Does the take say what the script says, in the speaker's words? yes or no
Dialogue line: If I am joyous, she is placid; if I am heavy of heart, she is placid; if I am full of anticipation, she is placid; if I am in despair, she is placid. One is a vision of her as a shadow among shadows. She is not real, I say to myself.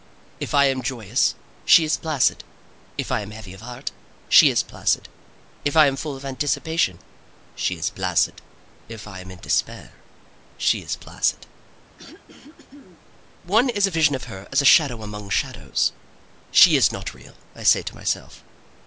yes